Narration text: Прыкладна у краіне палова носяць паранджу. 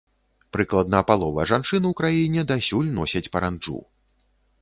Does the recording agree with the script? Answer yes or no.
no